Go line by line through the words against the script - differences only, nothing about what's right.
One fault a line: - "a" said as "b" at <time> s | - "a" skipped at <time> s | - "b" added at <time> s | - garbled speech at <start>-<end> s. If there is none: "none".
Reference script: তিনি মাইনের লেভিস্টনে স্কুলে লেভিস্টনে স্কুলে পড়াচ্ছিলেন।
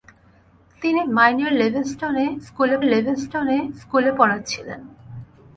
none